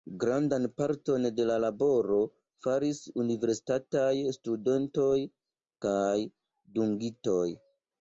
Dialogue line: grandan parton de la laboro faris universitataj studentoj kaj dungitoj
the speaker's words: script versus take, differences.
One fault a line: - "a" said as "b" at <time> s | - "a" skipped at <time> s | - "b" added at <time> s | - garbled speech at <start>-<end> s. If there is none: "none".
none